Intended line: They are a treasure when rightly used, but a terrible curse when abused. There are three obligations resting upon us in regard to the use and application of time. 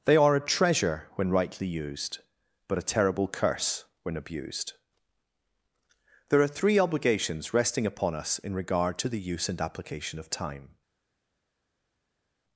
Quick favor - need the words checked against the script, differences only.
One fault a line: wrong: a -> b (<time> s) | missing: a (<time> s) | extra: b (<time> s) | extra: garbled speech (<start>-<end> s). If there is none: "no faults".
no faults